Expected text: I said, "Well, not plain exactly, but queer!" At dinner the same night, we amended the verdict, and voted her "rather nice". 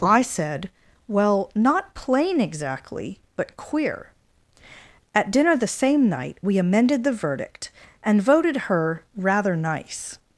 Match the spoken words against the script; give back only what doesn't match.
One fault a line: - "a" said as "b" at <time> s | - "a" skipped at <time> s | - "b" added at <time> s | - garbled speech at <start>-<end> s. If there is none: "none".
none